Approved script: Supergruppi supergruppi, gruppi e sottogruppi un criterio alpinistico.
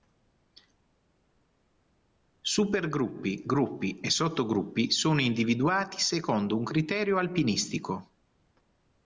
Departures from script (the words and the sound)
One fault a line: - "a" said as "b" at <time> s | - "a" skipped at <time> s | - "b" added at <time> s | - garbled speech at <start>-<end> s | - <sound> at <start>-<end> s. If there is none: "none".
- "supergruppi" skipped at 3.4 s
- "sono individuati secondo" added at 4.9 s